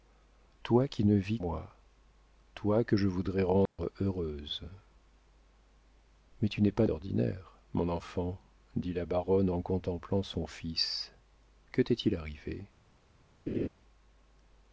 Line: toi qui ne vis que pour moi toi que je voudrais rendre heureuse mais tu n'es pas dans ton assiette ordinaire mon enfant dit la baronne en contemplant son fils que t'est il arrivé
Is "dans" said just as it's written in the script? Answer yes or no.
no